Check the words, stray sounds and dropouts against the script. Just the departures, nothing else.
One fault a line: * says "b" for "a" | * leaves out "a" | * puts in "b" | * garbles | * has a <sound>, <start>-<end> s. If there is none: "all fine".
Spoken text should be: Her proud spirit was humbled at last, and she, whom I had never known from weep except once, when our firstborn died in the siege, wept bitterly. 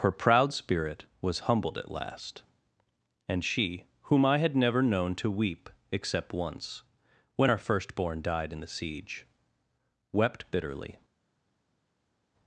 * says "to" for "from"